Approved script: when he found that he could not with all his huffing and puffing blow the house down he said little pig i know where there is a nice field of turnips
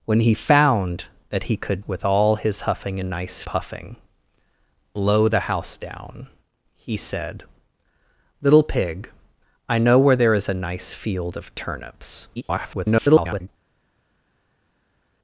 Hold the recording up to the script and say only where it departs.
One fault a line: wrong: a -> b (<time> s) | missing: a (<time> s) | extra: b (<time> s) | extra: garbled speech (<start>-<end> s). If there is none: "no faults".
missing: not (1.9 s)
wrong: and -> nice (3.0 s)
extra: garbled speech (12.4-13.5 s)